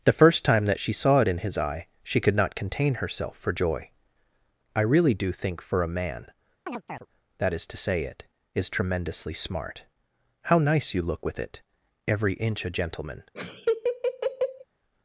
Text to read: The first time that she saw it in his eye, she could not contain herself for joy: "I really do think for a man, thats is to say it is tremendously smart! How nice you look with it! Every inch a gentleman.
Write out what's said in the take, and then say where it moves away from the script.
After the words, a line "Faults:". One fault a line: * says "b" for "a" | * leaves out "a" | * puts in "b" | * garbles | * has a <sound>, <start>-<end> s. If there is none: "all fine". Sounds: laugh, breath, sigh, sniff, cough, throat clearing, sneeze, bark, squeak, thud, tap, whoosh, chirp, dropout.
The first time that she saw it in his eye, she could not contain herself for joy: "I really do think for a man, that is to say it is tremendously smart! How nice you look with it! Every inch a gentleman.
Faults:
* has a chirp, 6.7-7.1 s
* says "that" for "thats"
* has a laugh, 13.3-14.6 s